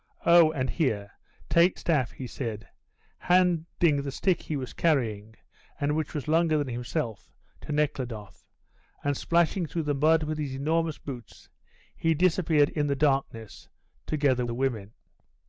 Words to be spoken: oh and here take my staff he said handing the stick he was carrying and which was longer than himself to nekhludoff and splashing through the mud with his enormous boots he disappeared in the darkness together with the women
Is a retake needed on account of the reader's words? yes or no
yes